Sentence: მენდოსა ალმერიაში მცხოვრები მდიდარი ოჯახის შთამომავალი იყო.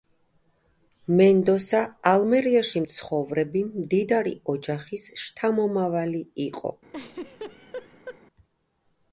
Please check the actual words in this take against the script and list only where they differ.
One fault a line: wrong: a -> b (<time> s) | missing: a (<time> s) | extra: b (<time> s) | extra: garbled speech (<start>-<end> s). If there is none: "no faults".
no faults